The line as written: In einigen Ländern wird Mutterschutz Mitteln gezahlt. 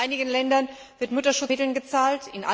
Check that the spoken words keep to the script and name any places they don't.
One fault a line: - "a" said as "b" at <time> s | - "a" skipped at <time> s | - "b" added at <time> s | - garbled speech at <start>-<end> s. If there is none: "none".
none